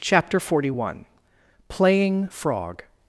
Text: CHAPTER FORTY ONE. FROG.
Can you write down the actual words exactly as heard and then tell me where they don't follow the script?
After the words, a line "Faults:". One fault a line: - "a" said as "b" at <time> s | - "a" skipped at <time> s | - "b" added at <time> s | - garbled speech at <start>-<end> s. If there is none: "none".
CHAPTER FORTY ONE. PLAYING FROG.
Faults:
- "PLAYING" added at 1.7 s